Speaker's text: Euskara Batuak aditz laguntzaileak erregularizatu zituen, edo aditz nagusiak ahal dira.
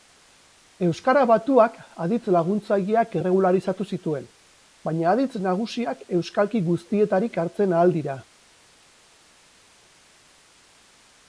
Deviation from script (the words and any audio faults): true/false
true